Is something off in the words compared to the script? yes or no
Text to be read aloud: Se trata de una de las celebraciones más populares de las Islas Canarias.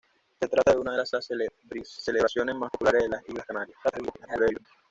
yes